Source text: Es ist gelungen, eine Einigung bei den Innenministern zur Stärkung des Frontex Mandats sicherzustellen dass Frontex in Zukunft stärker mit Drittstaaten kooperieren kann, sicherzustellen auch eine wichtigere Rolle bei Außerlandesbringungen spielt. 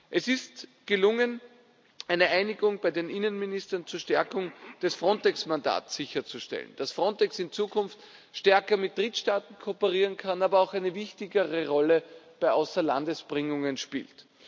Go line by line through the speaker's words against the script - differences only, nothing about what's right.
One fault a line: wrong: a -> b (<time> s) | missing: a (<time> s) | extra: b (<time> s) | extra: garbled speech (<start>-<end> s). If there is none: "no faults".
wrong: sicherzustellen -> aber (10.4 s)